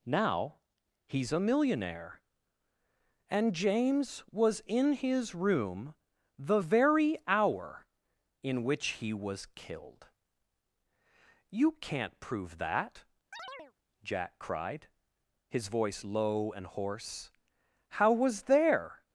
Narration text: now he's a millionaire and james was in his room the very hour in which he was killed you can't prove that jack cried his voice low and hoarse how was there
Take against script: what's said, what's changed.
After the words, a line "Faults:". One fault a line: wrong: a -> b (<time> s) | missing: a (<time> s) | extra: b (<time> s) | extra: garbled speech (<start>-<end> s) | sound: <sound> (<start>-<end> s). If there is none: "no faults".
now he's a millionaire and james was in his room the very hour in which he was killed you can't prove that jack cried his voice low and hoarse how was there
Faults:
sound: chirp (13.3-13.7 s)